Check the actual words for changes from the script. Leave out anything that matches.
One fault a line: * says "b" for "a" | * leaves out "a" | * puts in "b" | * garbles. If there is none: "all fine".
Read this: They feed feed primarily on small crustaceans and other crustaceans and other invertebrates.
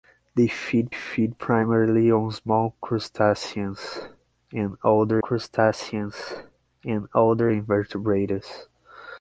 all fine